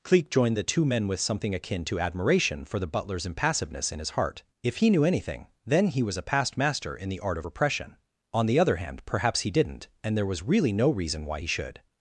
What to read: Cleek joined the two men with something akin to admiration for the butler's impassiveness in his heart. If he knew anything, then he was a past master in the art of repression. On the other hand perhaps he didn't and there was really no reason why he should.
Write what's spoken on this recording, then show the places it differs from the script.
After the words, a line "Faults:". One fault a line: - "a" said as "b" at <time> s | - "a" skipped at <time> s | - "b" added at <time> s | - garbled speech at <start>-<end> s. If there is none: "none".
Cleek joined the two men with something akin to admiration for the butler's impassiveness in his heart. If he knew anything, then he was a past master in the art of repression. On the other hand perhaps he didn't and there was really no reason why he should.
Faults:
none